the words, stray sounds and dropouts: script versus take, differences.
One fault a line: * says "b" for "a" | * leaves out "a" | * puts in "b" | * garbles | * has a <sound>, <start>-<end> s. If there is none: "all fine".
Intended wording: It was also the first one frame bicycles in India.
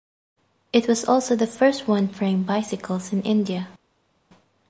all fine